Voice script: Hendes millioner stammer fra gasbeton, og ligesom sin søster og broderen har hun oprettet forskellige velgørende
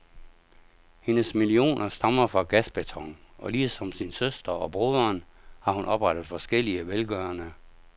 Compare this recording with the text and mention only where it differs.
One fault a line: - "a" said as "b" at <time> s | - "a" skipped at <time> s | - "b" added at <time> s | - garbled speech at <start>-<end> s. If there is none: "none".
none